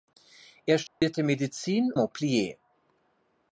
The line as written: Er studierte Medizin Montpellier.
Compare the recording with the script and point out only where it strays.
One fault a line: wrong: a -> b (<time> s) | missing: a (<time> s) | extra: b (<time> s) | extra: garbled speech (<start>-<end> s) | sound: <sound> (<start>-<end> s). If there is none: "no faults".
sound: dropout (0.9-1.0 s)